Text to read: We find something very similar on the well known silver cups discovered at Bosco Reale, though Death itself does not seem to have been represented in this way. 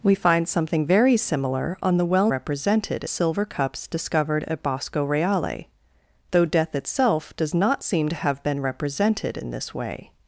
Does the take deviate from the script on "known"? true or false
true